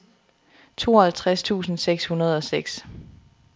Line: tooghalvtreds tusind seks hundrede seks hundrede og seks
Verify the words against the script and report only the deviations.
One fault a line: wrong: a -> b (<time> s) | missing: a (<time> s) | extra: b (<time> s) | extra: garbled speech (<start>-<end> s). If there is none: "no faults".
missing: seks hundrede (2.4 s)